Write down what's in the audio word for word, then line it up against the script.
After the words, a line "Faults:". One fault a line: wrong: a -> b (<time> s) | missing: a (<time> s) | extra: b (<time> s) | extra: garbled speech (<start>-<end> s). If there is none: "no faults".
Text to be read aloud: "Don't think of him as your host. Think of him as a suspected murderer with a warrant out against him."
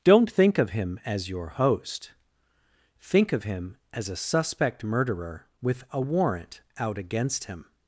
"Don't think of him as your host. Think of him as a suspect murderer with a warrant out against him."
Faults:
wrong: suspected -> suspect (4.2 s)